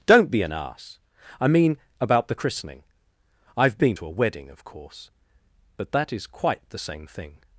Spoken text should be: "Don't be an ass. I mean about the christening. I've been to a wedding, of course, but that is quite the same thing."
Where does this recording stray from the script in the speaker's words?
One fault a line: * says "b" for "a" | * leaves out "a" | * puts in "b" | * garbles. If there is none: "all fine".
all fine